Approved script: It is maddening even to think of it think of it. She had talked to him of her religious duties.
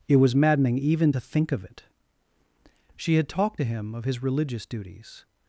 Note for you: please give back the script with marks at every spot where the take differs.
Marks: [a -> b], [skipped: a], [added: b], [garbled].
It [is -> was] maddening even to think of it [skipped: think of it.] She had talked to him of [her -> his] religious duties.